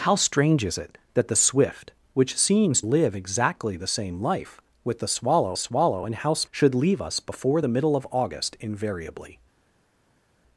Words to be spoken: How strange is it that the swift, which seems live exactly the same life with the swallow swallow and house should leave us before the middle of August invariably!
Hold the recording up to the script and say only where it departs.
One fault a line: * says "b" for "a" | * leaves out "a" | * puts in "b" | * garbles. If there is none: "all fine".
all fine